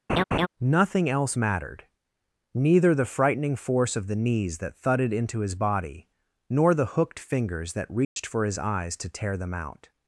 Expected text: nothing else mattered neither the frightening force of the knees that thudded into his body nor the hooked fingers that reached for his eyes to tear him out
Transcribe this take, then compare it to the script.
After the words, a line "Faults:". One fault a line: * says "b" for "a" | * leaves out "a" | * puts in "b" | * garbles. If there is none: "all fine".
nothing else mattered neither the frightening force of the knees that thudded into his body nor the hooked fingers that reached for his eyes to tear them out
Faults:
* says "them" for "him"